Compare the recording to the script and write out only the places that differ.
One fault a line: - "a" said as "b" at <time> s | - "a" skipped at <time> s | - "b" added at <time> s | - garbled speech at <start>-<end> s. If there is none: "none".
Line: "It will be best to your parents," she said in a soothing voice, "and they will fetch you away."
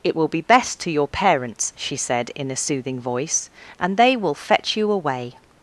none